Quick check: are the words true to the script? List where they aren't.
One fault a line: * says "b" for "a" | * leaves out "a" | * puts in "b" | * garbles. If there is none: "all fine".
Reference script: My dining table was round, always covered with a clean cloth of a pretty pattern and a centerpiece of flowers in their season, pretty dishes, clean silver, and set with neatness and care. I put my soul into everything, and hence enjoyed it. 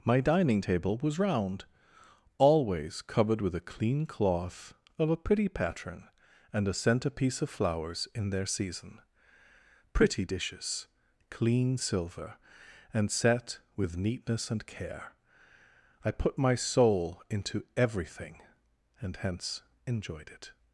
all fine